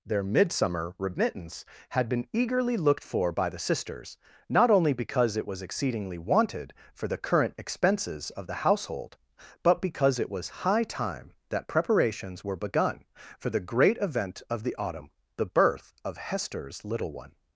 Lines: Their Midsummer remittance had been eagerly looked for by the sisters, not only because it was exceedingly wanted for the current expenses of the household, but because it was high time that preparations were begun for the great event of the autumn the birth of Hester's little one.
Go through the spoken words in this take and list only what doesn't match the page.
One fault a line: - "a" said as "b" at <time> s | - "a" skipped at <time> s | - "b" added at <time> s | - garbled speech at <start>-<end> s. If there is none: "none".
none